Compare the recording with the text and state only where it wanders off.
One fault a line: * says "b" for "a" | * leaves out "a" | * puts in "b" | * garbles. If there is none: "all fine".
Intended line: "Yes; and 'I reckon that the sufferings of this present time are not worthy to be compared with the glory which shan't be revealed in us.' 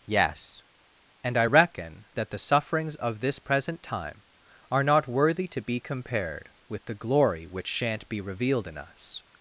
all fine